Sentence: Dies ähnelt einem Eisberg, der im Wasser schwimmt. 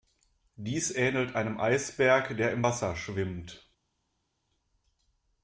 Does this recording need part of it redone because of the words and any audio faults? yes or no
no